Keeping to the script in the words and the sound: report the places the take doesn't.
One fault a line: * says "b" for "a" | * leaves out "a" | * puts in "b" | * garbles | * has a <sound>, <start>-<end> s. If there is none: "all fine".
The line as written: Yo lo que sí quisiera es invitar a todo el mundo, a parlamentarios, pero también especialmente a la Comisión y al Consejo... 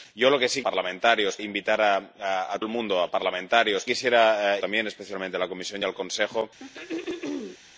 * says "parlamentarios" for "quisiera"
* leaves out "todo"
* says "quisiera" for "pero"
* has a throat clearing, 6.6-7.6 s